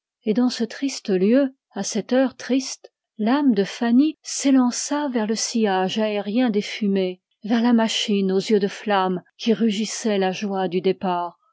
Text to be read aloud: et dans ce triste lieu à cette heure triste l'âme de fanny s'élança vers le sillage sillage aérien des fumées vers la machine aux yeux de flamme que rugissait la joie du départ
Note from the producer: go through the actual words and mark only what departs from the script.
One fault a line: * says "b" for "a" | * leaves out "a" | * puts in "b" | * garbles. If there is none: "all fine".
* leaves out "sillage"
* says "qui" for "que"